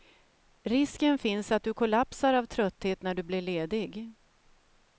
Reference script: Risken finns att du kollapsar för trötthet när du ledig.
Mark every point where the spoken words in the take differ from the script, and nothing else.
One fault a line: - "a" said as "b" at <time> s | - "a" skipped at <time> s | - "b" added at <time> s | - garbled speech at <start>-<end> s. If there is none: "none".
- "för" said as "av" at 2.3 s
- "blir" added at 3.2 s